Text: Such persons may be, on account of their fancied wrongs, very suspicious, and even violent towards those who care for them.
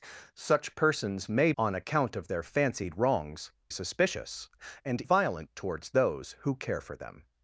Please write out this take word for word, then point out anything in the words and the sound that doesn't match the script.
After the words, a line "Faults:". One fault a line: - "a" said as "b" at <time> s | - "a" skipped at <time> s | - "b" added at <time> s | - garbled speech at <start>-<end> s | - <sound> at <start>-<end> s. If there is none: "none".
Such persons may on account of their fancied wrongs, suspicious, and violent towards those who care for them.
Faults:
- "be" skipped at 1.5 s
- "very" skipped at 3.5 s
- "even" skipped at 5.0 s